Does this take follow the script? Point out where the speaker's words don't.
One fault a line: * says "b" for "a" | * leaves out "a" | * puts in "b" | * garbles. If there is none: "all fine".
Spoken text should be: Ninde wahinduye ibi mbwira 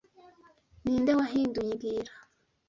* leaves out "ibi"